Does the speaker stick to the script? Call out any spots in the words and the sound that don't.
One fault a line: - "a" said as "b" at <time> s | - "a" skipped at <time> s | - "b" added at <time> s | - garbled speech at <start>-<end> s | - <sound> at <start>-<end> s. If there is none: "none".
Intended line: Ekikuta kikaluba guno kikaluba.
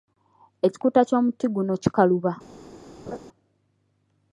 - "kikaluba" said as "ky'omuti" at 1.1 s
- laugh at 3.1-3.2 s